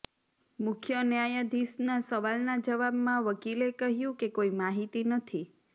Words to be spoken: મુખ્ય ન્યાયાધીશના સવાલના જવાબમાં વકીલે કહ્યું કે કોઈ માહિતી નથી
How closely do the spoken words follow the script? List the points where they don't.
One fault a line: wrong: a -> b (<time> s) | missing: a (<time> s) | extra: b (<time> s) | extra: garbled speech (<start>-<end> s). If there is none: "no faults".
no faults